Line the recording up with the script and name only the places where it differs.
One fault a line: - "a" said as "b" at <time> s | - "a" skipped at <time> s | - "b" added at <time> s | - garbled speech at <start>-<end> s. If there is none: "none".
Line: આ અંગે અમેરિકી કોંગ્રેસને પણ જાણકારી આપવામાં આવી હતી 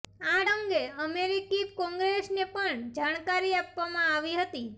none